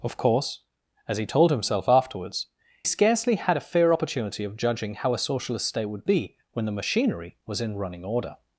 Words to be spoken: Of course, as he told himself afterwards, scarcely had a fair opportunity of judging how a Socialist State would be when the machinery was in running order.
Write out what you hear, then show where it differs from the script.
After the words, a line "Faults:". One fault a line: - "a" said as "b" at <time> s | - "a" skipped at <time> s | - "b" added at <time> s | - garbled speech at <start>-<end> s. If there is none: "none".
Of course, as he told himself afterwards, scarcely had a fair opportunity of judging how a Socialist State would be when the machinery was in running order.
Faults:
none